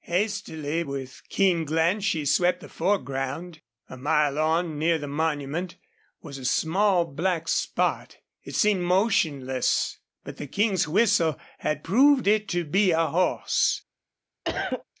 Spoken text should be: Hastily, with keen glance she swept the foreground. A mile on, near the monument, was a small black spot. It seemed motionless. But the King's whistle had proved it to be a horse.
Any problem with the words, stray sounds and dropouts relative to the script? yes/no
yes